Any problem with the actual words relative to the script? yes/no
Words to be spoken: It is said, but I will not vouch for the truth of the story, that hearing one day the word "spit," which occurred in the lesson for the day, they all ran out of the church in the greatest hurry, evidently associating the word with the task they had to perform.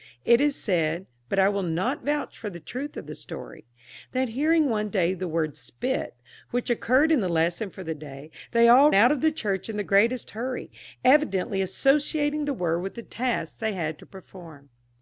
yes